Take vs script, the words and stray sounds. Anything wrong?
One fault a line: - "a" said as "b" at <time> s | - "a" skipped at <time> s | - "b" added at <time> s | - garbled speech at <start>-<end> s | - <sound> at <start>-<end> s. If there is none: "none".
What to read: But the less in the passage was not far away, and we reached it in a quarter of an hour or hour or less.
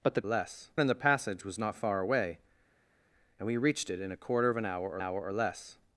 none